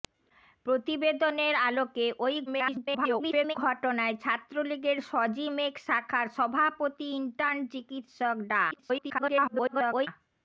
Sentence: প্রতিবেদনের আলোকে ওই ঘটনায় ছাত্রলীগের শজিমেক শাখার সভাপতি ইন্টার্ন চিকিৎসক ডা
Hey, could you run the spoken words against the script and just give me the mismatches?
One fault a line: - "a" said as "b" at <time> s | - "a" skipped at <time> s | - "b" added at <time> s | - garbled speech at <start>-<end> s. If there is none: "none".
- garbled speech at 2.5-3.6 s
- garbled speech at 8.7-10.1 s